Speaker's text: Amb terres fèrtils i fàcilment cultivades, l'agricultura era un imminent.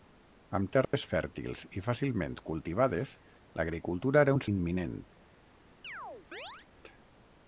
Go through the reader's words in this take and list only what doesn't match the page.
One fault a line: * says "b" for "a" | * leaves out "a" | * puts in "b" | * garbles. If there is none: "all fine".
all fine